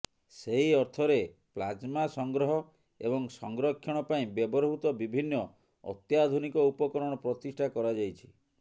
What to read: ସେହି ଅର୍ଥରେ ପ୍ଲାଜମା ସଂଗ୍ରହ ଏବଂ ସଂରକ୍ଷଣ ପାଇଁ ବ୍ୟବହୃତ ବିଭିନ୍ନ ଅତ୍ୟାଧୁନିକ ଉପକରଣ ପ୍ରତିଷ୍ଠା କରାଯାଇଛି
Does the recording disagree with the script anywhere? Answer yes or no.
no